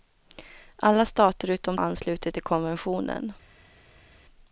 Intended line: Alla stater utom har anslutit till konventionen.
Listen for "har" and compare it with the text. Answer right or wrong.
right